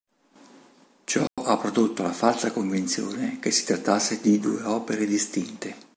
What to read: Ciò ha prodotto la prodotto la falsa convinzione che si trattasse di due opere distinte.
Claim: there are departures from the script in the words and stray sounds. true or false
true